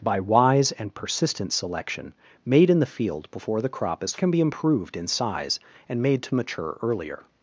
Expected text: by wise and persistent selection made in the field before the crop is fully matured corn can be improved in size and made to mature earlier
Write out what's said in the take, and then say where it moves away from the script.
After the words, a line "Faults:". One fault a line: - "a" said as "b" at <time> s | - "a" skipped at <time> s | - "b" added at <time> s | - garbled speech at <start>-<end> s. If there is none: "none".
by wise and persistent selection made in the field before the crop is can be improved in size and made to mature earlier
Faults:
- "fully matured corn" skipped at 4.2 s